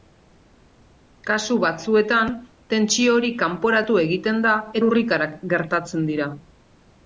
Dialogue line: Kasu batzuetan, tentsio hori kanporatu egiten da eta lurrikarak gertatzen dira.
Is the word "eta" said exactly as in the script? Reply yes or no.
no